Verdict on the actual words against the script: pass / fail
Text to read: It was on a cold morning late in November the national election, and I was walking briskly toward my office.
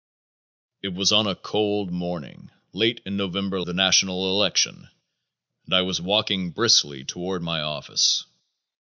pass